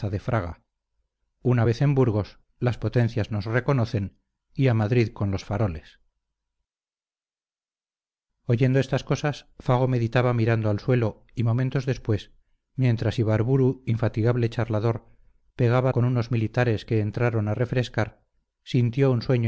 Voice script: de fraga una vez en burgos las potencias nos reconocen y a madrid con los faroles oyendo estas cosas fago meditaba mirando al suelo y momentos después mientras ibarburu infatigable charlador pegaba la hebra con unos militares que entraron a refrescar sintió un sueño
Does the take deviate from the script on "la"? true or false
true